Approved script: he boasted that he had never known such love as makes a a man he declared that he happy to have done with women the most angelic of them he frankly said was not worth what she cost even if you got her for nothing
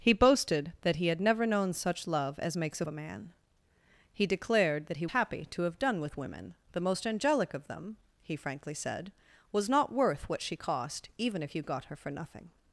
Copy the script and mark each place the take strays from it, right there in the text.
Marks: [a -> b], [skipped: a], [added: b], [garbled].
he boasted that he had never known such love as makes a a man he declared that he happy to have done with women the most angelic of them he frankly said was not worth what she cost even if you got her for nothing